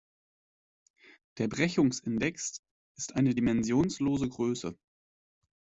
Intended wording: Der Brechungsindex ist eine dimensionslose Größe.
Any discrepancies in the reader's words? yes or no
no